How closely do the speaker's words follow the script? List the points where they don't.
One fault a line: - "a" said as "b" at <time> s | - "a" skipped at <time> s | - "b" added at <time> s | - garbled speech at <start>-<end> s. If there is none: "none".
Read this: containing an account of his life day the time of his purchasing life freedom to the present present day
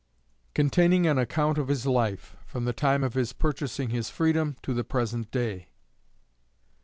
- "day" said as "from" at 2.4 s
- "life" said as "his" at 3.9 s
- "present" skipped at 5.3 s